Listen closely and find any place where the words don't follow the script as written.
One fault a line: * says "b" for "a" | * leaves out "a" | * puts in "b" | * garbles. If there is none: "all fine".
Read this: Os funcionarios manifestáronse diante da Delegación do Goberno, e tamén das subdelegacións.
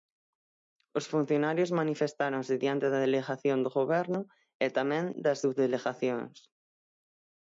all fine